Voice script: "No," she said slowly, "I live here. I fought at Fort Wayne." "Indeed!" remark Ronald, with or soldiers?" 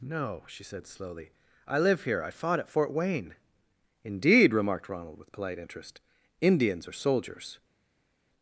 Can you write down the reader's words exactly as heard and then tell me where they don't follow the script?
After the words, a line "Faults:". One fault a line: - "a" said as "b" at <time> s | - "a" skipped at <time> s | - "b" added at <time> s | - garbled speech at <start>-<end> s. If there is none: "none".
"No," she said slowly, "I live here. I fought at Fort Wayne." "Indeed!" remarked Ronald, with polite interest. "Indians or soldiers?"
Faults:
- "remark" said as "remarked" at 4.5 s
- "polite interest Indians" added at 5.3 s